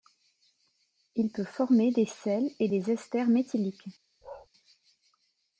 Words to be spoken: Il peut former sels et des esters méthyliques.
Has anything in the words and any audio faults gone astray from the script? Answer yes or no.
yes